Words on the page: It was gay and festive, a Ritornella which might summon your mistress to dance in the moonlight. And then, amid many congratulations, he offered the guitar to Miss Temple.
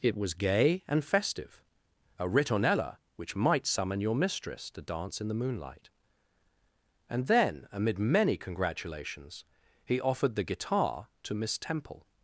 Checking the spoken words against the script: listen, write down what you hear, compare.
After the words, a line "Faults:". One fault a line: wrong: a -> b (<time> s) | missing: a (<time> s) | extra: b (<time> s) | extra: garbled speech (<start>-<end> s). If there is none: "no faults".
It was gay and festive, a Ritornella which might summon your mistress to dance in the moonlight. And then, amid many congratulations, he offered the guitar to Miss Temple.
Faults:
no faults